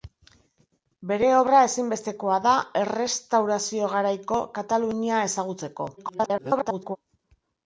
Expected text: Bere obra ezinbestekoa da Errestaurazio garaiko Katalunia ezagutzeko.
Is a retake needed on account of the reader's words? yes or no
yes